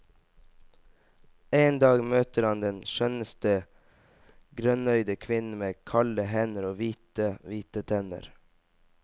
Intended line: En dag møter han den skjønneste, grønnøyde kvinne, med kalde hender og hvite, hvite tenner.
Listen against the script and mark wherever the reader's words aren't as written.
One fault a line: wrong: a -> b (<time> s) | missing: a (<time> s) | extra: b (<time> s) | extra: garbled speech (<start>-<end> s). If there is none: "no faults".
no faults